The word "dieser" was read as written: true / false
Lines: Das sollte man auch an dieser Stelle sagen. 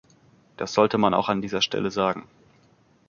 true